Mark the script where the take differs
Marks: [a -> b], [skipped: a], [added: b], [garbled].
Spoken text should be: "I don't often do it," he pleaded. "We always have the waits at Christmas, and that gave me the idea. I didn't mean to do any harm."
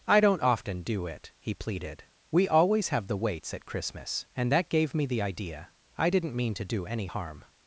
"I don't often do it," he pleaded. "We always have the waits at Christmas, and that gave me the idea. I didn't mean to do any harm."